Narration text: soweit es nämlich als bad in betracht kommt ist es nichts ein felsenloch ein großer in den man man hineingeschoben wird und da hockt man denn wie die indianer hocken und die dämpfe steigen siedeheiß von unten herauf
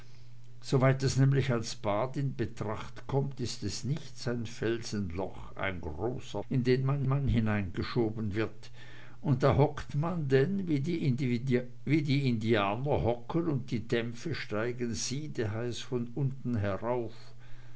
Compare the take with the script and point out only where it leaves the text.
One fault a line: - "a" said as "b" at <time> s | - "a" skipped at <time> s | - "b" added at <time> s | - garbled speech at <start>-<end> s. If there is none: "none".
none